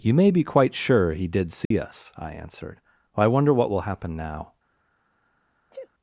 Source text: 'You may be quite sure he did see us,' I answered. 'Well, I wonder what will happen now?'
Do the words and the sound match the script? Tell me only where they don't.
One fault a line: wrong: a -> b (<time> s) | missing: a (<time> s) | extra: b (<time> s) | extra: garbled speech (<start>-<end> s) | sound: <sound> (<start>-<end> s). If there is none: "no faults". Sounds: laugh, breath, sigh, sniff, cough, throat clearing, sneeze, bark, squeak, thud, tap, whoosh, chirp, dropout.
sound: dropout (1.6-1.7 s)
missing: Well (2.8 s)
sound: sneeze (5.7-5.9 s)